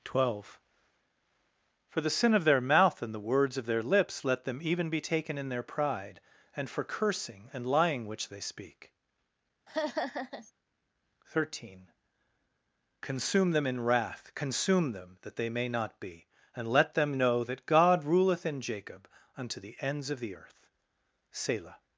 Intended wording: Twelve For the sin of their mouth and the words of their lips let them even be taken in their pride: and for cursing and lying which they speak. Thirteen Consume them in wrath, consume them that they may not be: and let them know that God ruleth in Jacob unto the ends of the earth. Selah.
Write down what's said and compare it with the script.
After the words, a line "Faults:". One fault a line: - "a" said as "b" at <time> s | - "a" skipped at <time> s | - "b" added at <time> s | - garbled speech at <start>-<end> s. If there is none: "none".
Twelve For the sin of their mouth and the words of their lips let them even be taken in their pride: and for cursing and lying which they speak. Thirteen Consume them in wrath, consume them that they may not be: and let them know that God ruleth in Jacob unto the ends of the earth. Selah.
Faults:
none